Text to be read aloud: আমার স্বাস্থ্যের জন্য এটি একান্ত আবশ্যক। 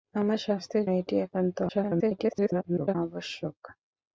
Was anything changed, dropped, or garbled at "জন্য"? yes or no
yes